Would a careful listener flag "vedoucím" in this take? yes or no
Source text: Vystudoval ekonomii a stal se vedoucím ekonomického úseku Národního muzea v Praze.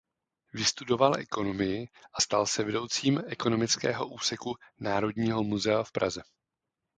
no